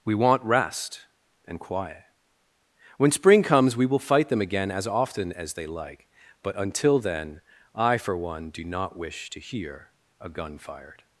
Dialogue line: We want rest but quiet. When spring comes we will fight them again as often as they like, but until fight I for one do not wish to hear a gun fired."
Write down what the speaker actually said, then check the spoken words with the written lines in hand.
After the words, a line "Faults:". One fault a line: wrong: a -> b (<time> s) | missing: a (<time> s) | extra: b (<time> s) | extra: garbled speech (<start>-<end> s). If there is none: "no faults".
We want rest and quiet. When spring comes we will fight them again as often as they like, but until then I for one do not wish to hear a gun fired."
Faults:
wrong: but -> and (1.4 s)
wrong: fight -> then (7.0 s)